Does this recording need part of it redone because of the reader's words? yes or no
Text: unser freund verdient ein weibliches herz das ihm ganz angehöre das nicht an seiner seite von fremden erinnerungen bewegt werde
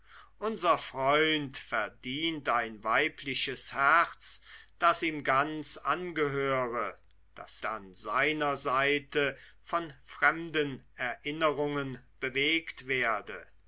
yes